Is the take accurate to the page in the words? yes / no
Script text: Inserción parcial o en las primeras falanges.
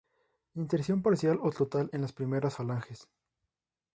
no